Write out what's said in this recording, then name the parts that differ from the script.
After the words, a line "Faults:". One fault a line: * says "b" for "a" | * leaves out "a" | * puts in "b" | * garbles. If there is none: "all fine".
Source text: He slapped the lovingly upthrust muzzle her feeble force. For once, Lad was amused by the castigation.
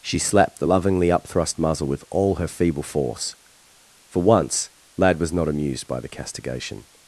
She slapped the lovingly upthrust muzzle with all her feeble force. For once, Lad was not amused by the castigation.
Faults:
* says "She" for "He"
* puts in "with all"
* puts in "not"